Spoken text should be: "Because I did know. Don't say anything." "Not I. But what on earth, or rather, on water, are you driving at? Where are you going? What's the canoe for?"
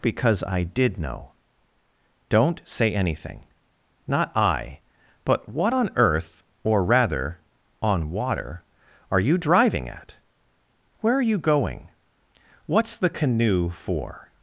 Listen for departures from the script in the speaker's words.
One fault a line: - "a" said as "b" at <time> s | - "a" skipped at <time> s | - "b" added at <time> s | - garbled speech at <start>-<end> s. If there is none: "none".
none